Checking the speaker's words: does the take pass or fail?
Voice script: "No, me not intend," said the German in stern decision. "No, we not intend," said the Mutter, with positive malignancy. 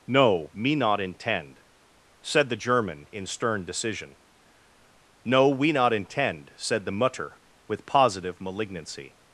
pass